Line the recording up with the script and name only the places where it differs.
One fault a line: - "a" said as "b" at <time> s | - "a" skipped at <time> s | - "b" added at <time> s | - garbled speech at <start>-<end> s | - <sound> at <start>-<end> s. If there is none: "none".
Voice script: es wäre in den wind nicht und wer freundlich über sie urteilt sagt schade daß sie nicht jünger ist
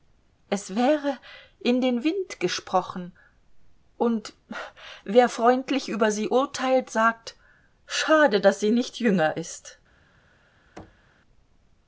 - "nicht" said as "gesprochen" at 2.4 s
- thud at 10.8-11.1 s